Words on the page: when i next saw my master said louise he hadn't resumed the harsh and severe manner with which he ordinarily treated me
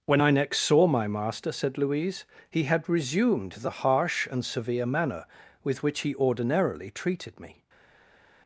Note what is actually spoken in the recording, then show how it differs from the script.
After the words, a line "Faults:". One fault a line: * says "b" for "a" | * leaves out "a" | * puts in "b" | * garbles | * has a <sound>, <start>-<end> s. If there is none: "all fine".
when i next saw my master said louise he had resumed the harsh and severe manner with which he ordinarily treated me
Faults:
* says "had" for "hadn't"